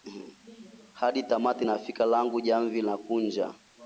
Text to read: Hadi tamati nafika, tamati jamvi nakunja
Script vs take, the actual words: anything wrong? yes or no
yes